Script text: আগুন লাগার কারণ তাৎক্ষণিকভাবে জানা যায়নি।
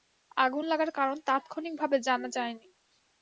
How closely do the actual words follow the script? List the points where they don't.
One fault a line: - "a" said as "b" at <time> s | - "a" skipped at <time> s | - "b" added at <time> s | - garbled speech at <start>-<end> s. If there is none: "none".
none